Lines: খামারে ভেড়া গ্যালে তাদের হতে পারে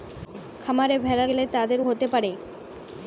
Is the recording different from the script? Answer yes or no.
no